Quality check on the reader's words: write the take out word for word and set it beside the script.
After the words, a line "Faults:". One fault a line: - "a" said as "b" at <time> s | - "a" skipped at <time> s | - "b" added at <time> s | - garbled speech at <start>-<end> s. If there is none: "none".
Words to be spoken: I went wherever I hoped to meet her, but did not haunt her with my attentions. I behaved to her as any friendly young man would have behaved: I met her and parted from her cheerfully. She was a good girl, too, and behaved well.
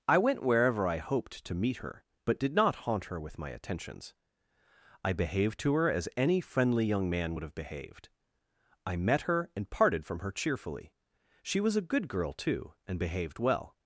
I went wherever I hoped to meet her, but did not haunt her with my attentions. I behaved to her as any friendly young man would have behaved: I met her and parted from her cheerfully. She was a good girl, too, and behaved well.
Faults:
none